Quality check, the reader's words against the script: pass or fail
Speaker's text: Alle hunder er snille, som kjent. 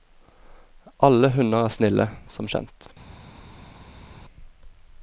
pass